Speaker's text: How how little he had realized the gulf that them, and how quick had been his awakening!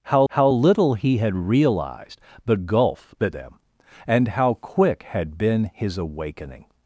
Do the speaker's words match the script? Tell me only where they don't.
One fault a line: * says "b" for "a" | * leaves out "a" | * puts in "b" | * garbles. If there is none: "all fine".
all fine